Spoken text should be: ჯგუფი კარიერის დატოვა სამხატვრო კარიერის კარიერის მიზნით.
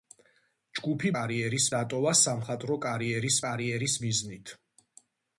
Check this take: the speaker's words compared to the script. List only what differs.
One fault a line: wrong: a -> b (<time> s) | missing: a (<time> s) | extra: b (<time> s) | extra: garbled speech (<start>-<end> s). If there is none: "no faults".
no faults